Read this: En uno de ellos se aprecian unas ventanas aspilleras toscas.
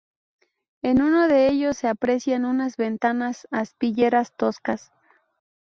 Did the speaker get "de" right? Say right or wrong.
right